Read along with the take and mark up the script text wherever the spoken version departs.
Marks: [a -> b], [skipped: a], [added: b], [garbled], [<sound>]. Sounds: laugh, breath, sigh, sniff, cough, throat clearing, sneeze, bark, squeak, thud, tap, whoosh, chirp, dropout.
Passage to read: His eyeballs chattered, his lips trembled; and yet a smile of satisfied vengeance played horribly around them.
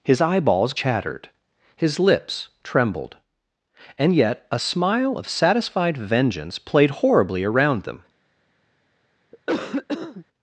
His eyeballs chattered, his lips trembled; and yet a smile of satisfied vengeance played horribly around them. [cough]